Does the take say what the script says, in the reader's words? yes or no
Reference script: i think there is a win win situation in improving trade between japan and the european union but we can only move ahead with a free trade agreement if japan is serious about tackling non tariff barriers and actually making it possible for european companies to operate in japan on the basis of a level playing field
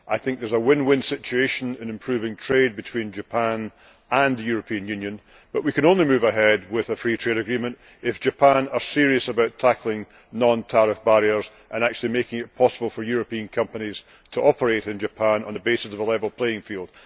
yes